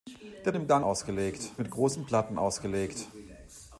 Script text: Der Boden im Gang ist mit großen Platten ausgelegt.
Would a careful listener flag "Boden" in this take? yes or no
yes